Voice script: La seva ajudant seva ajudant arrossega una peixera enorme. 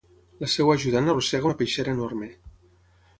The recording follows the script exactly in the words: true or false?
false